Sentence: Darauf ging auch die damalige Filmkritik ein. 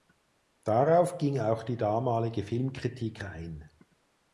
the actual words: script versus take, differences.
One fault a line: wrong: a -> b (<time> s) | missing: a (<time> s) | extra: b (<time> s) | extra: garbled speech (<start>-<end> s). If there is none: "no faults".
no faults